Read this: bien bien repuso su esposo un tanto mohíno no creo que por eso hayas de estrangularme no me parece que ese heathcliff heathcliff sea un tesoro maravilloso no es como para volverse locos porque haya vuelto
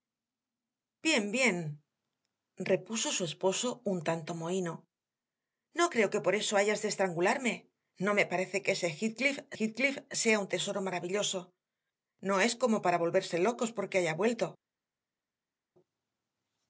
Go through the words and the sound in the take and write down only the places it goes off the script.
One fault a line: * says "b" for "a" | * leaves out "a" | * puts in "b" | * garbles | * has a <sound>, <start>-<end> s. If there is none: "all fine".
all fine